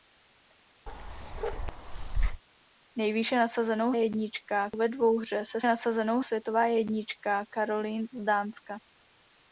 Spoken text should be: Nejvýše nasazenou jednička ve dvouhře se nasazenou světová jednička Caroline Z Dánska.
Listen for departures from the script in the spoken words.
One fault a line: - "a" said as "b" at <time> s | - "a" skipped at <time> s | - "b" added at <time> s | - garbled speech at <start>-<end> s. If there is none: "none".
none